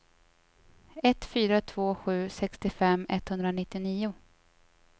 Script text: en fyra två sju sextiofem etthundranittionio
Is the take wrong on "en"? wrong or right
wrong